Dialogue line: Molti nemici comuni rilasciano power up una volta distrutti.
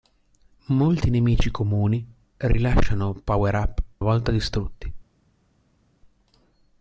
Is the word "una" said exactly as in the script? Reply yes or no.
no